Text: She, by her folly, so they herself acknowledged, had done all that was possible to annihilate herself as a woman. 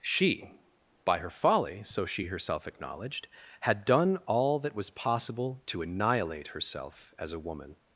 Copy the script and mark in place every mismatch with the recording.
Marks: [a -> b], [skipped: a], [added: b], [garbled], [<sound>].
She, by her folly, so [they -> she] herself acknowledged, had done all that was possible to annihilate herself as a woman.